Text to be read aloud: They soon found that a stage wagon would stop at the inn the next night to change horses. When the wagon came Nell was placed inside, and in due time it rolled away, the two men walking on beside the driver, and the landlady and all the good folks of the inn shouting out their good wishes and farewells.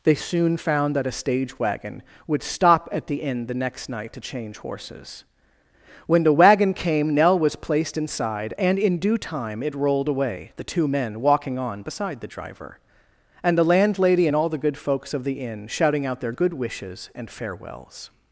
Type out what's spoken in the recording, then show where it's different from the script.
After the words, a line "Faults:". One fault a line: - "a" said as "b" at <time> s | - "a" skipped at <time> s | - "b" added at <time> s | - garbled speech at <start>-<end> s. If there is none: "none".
They soon found that a stage wagon would stop at the inn the next night to change horses. When the wagon came Nell was placed inside, and in due time it rolled away, the two men walking on beside the driver, and the landlady and all the good folks of the inn shouting out their good wishes and farewells.
Faults:
none